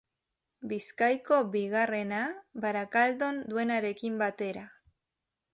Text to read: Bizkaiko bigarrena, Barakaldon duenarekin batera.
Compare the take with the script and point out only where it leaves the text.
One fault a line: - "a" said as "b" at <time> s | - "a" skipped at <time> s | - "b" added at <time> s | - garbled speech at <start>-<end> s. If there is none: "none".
none